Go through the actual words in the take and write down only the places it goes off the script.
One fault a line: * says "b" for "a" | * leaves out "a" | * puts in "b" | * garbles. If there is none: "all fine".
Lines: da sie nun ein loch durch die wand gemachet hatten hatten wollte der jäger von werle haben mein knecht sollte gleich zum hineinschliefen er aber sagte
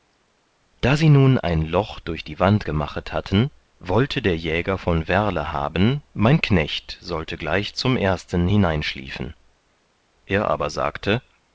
* leaves out "hatten"
* puts in "ersten"